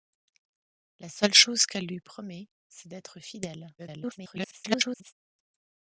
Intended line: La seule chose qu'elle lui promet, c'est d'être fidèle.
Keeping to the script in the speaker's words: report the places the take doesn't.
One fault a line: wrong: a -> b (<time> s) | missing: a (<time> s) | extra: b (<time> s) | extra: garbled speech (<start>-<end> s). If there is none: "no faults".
extra: garbled speech (3.8-5.1 s)